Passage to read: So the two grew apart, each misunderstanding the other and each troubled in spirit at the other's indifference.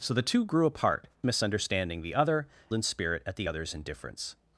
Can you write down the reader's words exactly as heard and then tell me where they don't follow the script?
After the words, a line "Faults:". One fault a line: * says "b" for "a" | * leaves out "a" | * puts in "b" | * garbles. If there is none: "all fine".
So the two grew apart, misunderstanding the other in spirit at the other's indifference.
Faults:
* leaves out "each"
* leaves out "and each troubled"